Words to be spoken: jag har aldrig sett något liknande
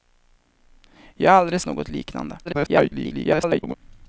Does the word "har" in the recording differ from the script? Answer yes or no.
no